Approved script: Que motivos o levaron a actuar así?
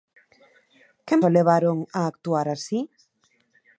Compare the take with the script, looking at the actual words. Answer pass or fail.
fail